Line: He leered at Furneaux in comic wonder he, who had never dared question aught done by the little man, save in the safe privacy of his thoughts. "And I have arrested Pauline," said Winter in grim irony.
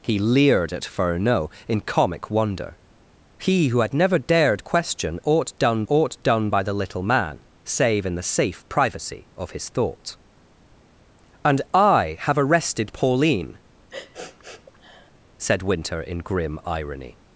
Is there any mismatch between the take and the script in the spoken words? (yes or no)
yes